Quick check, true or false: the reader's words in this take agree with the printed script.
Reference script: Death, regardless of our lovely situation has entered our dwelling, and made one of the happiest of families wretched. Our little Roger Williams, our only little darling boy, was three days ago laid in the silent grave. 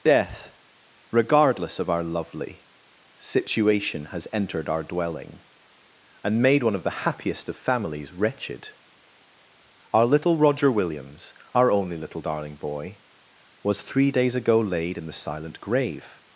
true